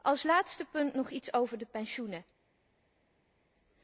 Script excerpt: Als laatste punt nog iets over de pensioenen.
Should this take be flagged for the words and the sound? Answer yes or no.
no